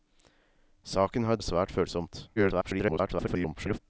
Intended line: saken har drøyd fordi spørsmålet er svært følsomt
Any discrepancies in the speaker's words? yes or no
yes